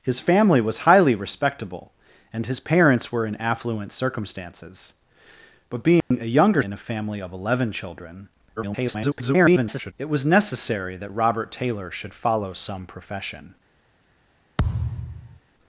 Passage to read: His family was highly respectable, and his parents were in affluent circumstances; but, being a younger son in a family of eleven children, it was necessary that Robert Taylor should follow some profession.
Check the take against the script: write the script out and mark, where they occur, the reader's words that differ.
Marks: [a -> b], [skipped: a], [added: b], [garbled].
His family was highly respectable, and his parents were in affluent circumstances; but, being a younger [skipped: son] in a family of eleven children, [garbled] it was necessary that Robert Taylor should follow some profession.